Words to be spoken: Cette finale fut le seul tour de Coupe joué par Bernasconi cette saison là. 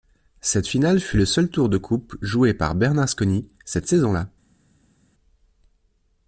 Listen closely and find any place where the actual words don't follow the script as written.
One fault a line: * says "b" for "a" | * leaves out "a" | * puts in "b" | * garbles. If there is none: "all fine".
all fine